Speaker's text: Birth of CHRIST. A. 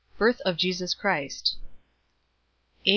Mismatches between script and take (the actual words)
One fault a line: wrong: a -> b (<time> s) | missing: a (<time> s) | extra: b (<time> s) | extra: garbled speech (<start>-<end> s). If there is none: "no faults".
extra: JESUS (0.6 s)